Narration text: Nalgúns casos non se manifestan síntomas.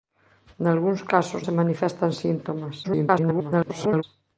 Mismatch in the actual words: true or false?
true